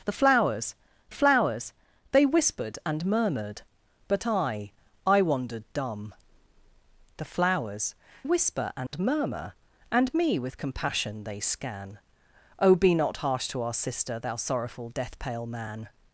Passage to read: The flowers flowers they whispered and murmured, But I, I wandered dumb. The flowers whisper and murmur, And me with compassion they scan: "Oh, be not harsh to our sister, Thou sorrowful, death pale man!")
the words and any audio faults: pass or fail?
fail